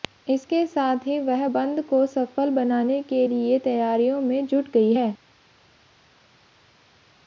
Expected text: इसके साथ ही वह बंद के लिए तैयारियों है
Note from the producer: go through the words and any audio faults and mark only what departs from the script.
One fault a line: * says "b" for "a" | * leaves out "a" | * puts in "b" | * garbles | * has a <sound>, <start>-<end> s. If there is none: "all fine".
* puts in "को सफल बनाने"
* puts in "में जुट गई"